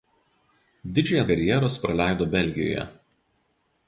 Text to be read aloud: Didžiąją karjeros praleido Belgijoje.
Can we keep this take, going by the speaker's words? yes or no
yes